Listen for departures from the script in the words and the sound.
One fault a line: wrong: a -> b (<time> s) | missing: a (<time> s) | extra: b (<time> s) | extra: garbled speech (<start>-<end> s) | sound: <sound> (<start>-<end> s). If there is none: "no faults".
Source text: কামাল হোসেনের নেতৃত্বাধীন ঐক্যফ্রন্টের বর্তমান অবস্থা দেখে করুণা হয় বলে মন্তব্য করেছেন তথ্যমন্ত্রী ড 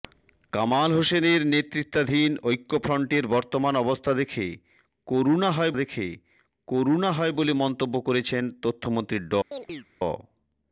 extra: দেখে করুণা হয় (5.7 s)
sound: chirp (9.5-9.9 s)